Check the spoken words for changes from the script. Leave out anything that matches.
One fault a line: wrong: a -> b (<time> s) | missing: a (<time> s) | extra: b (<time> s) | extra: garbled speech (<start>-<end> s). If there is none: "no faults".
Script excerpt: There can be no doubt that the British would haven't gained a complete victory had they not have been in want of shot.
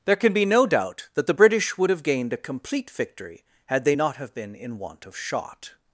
wrong: haven't -> have (1.9 s)